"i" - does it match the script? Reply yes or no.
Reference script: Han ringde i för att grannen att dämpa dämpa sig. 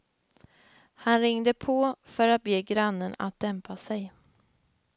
no